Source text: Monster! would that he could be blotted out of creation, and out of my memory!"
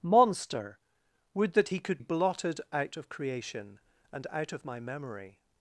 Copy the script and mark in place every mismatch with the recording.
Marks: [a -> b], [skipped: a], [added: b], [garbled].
Monster! would that he could [skipped: be] blotted out of creation, and out of my memory!"